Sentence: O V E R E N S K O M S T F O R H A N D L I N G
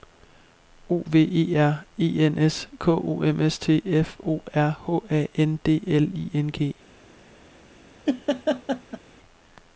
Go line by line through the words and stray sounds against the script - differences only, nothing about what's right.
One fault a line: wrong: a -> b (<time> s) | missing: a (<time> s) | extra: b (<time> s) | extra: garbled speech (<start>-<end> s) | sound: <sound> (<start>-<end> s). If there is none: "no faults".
sound: laugh (8.1-9.0 s)